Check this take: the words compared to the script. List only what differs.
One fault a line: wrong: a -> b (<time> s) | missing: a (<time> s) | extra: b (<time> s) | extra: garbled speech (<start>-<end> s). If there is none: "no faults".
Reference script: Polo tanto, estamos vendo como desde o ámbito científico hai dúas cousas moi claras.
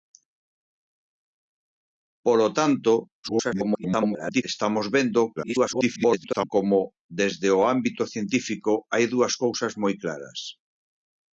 extra: garbled speech (3.2-4.4 s)
extra: garbled speech (5.4-6.5 s)